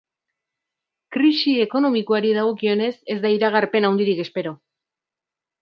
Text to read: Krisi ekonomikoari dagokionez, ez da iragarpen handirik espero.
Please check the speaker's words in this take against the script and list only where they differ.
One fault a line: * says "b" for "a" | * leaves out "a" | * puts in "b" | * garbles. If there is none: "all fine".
all fine